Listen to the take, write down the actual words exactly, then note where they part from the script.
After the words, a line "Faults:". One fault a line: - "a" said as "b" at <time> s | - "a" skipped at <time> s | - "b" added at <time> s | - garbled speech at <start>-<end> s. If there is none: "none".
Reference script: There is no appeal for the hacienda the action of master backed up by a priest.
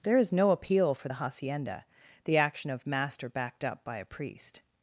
There is no appeal for the hacienda the action of master backed up by a priest.
Faults:
none